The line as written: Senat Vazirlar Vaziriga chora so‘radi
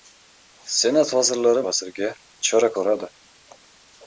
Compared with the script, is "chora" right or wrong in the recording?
right